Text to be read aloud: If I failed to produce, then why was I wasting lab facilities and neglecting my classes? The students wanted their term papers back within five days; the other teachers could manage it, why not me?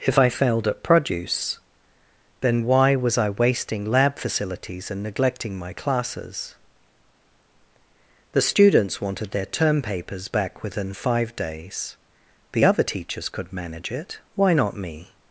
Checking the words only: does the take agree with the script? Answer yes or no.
no